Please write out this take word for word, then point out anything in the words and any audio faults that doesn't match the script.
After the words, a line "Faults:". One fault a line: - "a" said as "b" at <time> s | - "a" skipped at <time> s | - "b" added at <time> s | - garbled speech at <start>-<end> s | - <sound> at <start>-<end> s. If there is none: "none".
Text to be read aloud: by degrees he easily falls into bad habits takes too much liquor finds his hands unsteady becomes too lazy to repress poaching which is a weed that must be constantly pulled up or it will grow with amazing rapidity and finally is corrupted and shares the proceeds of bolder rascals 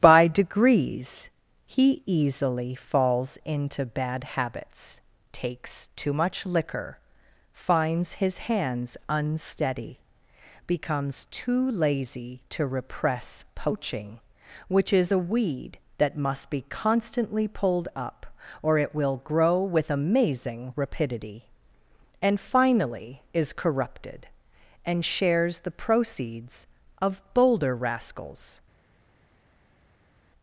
by degrees he easily falls into bad habits takes too much liquor finds his hands unsteady becomes too lazy to repress poaching which is a weed that must be constantly pulled up or it will grow with amazing rapidity and finally is corrupted and shares the proceeds of bolder rascals
Faults:
none